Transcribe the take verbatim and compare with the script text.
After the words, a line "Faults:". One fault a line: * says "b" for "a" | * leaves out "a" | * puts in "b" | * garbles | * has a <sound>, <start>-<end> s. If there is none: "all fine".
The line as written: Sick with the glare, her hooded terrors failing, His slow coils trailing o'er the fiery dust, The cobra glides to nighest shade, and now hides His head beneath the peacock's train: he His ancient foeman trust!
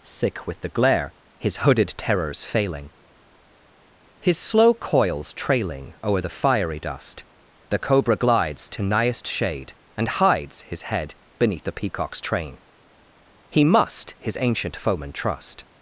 Sick with the glare, his hooded terrors failing, His slow coils trailing o'er the fiery dust, The cobra glides to nighest shade, and hides His head beneath the peacock's train: he must His ancient foeman trust!
Faults:
* says "his" for "her"
* leaves out "now"
* puts in "must"